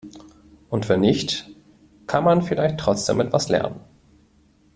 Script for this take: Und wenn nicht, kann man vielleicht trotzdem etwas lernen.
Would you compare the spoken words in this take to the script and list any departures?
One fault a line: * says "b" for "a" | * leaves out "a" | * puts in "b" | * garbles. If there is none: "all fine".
all fine